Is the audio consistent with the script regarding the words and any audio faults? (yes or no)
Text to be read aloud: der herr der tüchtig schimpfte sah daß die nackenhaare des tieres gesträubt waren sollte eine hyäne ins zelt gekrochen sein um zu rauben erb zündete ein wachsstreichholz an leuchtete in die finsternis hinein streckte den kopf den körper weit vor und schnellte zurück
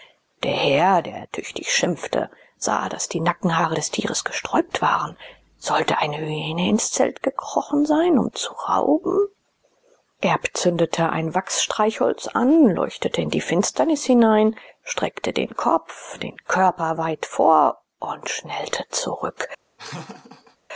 no